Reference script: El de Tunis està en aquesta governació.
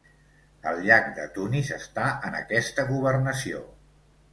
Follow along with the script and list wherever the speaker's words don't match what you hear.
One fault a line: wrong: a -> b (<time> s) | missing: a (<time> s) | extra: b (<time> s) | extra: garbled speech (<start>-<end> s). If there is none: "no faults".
extra: llac (0.9 s)